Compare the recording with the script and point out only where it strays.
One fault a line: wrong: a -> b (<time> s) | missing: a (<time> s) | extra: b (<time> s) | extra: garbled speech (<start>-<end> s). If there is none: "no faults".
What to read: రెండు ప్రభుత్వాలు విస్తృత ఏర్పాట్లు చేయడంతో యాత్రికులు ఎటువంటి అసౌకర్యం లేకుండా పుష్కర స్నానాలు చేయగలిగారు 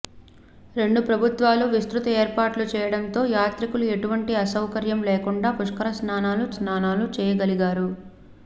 extra: స్నానాలు (6.6 s)